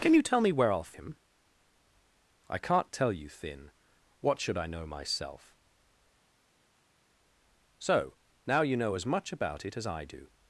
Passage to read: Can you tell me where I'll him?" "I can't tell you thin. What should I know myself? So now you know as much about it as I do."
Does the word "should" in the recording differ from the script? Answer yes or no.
no